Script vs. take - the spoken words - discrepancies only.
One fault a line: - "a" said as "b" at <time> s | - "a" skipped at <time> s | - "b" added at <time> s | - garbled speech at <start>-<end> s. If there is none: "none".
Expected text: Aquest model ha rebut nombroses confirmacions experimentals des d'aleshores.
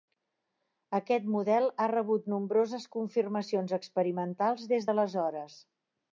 none